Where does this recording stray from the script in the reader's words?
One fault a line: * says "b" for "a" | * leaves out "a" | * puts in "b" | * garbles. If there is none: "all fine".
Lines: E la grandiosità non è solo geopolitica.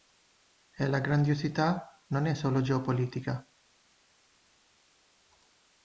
all fine